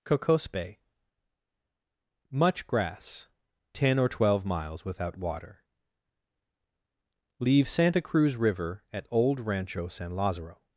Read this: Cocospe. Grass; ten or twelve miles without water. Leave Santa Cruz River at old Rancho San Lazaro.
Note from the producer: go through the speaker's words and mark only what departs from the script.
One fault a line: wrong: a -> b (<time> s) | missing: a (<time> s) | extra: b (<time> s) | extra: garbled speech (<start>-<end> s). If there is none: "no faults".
extra: Much (2.3 s)